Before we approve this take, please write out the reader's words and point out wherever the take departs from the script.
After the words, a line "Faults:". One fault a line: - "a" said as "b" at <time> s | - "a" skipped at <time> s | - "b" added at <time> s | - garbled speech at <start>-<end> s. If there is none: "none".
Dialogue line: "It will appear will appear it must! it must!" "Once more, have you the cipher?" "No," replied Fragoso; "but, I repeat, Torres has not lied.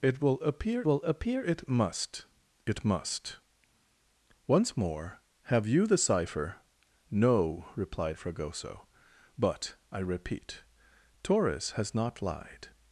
"It will appear will appear it must! it must!" "Once more, have you the cipher?" "No," replied Fragoso; "but, I repeat, Torres has not lied.
Faults:
none